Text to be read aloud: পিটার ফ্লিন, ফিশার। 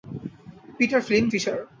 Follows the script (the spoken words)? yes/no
yes